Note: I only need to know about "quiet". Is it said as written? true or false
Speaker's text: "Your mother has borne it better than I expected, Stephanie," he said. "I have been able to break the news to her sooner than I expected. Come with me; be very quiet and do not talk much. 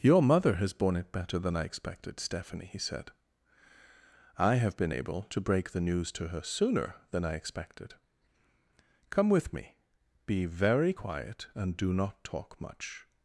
true